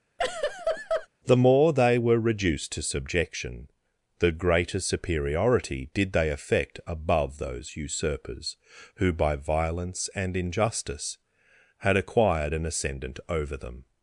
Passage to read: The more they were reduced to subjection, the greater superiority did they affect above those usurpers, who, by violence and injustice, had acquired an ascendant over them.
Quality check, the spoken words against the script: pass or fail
pass